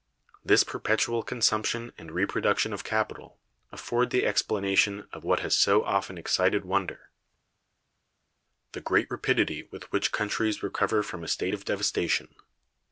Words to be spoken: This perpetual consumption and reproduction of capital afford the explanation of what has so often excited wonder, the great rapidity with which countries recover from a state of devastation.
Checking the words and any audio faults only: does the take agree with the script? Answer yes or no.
yes